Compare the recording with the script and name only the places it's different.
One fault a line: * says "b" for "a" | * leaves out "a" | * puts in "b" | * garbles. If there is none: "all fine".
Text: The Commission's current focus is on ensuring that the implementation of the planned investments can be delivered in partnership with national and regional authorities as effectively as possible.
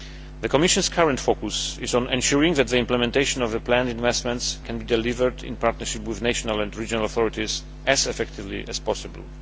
all fine